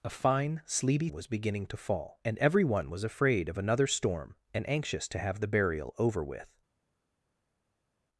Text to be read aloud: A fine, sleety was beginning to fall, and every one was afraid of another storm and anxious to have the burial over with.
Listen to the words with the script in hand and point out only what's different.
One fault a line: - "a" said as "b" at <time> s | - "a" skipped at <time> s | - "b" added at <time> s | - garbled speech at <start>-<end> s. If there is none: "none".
none